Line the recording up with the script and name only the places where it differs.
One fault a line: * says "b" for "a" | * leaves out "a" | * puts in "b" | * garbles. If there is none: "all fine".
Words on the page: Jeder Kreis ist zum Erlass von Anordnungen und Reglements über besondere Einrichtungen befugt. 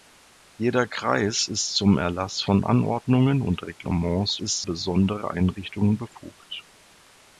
* says "ist" for "über"